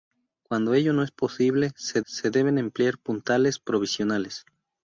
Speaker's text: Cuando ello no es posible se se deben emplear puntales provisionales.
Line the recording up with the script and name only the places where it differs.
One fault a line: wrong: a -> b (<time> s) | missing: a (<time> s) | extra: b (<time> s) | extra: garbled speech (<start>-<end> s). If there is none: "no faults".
no faults